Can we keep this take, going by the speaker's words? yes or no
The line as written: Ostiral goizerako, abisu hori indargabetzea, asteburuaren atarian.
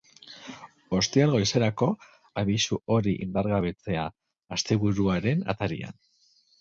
yes